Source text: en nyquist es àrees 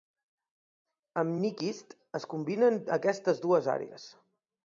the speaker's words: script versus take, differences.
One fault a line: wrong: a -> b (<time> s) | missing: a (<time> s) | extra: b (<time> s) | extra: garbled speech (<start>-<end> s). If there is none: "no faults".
wrong: en -> amb (1.2 s)
extra: combinen aquestes dues (2.3 s)